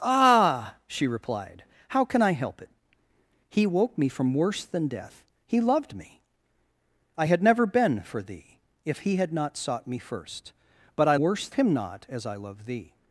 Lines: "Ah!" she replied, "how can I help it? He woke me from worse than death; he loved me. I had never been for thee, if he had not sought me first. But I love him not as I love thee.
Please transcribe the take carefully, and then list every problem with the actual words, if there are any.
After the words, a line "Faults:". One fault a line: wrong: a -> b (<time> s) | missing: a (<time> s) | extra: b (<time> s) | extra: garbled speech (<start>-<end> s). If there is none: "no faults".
"Ah!" she replied, "how can I help it? He woke me from worse than death; he loved me. I had never been for thee, if he had not sought me first. But I worse him not as I love thee.
Faults:
wrong: love -> worse (11.2 s)